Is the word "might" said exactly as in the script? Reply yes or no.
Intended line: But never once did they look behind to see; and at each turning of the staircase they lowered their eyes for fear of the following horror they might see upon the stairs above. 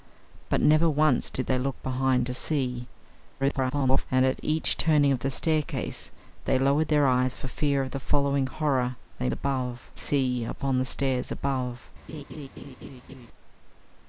no